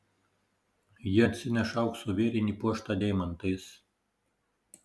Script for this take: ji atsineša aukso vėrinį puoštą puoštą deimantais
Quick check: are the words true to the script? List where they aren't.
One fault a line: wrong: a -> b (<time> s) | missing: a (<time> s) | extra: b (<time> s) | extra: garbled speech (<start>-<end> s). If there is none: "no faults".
missing: puoštą (3.0 s)